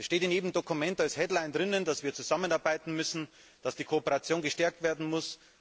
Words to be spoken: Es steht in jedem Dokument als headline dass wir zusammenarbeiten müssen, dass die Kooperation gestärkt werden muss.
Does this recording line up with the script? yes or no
yes